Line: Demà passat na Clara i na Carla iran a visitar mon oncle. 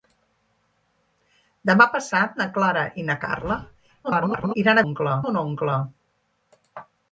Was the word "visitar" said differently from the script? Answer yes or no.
yes